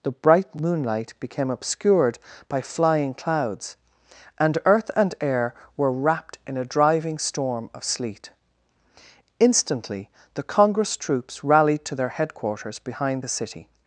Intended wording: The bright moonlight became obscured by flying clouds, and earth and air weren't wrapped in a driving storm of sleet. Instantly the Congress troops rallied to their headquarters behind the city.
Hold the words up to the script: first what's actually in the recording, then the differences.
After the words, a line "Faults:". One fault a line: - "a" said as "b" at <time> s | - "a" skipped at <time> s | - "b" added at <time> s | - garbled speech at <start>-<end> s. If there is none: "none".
The bright moonlight became obscured by flying clouds, and earth and air were wrapped in a driving storm of sleet. Instantly the Congress troops rallied to their headquarters behind the city.
Faults:
- "weren't" said as "were" at 5.8 s